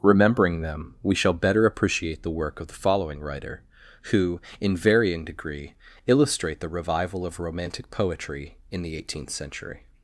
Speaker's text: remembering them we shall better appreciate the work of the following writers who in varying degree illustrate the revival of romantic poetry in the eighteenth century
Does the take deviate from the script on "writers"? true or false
true